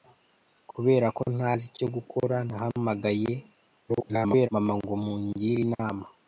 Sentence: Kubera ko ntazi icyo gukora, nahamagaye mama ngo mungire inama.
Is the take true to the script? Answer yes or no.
no